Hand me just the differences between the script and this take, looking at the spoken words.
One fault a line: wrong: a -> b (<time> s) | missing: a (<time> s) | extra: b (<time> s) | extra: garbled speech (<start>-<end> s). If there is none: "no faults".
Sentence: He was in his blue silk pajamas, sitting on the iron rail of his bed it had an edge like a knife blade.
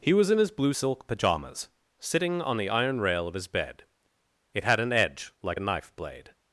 no faults